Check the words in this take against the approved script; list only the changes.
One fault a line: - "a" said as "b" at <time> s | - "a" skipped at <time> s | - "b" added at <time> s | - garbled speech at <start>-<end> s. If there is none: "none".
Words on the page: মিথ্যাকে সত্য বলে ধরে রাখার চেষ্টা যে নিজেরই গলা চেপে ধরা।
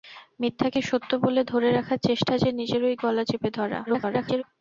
- garbled speech at 3.9-4.4 s